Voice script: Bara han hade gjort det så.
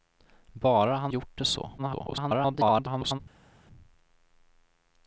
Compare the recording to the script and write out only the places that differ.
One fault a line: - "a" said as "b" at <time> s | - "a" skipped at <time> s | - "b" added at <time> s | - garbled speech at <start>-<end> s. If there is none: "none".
- "hade" skipped at 1.1 s
- garbled speech at 1.8-3.2 s